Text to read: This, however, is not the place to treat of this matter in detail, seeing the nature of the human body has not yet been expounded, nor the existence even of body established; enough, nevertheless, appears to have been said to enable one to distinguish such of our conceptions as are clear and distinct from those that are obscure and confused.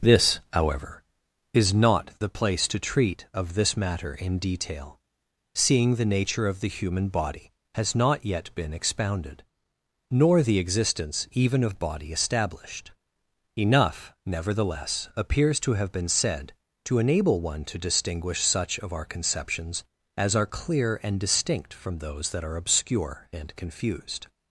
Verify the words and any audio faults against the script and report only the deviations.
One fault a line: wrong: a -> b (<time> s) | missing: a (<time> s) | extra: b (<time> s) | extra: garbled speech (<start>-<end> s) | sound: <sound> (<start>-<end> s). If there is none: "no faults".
no faults